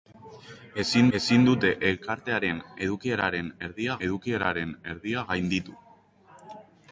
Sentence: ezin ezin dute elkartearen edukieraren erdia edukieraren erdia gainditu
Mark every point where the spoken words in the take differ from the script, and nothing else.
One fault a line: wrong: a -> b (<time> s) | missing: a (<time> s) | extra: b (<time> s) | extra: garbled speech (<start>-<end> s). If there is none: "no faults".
no faults